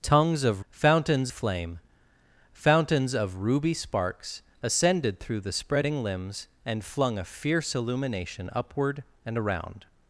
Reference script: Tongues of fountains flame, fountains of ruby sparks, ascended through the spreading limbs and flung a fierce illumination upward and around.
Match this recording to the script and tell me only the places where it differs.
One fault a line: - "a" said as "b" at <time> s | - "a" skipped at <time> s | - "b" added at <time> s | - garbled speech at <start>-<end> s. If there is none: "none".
none